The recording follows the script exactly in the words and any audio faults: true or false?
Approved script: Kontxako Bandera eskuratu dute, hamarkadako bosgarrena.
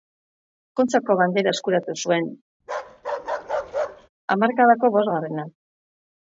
false